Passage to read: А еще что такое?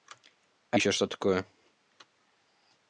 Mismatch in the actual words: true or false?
false